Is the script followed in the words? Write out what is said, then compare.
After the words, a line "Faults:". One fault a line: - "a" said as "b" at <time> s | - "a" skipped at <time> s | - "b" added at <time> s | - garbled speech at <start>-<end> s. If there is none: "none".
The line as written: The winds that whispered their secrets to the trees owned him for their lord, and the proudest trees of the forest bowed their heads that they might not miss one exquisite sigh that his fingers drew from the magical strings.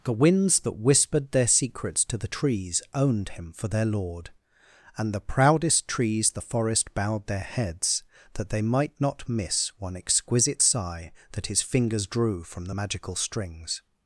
The winds that whispered their secrets to the trees owned him for their lord, and the proudest trees the forest bowed their heads that they might not miss one exquisite sigh that his fingers drew from the magical strings.
Faults:
- "of" skipped at 6.3 s